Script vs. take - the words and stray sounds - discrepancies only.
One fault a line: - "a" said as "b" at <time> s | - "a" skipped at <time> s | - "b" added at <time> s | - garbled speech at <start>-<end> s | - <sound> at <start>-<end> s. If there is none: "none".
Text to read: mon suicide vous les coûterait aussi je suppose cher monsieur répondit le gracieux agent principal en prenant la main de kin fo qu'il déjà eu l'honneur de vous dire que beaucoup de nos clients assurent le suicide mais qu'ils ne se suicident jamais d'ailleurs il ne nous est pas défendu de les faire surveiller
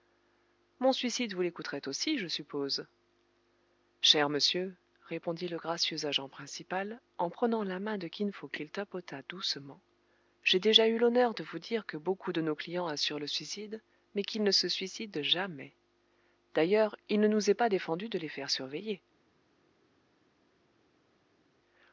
- "tapota doucement j'ai" added at 8.7 s